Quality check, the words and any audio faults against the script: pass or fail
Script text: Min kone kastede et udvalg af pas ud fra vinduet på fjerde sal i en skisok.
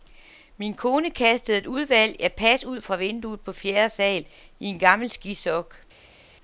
fail